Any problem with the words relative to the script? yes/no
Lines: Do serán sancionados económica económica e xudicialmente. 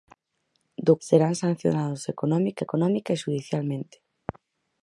no